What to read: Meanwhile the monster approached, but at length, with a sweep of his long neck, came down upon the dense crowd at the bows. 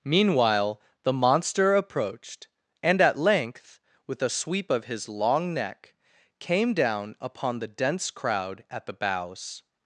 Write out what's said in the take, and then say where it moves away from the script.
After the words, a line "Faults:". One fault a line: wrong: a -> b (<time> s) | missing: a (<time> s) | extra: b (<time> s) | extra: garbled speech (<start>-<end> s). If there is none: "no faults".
Meanwhile the monster approached, and at length, with a sweep of his long neck, came down upon the dense crowd at the bows.
Faults:
wrong: but -> and (2.8 s)